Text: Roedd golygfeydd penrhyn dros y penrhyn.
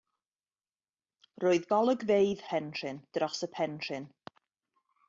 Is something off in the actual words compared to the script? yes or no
no